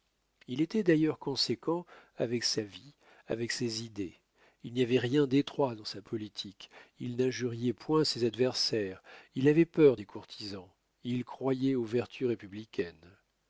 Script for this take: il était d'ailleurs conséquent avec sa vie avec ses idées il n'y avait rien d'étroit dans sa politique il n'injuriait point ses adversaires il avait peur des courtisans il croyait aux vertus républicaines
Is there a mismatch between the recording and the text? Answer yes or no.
no